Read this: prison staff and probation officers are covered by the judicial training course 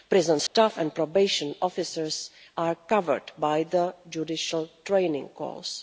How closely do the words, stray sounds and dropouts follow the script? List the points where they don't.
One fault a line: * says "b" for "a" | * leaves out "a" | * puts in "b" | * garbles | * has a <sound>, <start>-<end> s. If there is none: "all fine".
* has a dropout, 0.5-0.5 s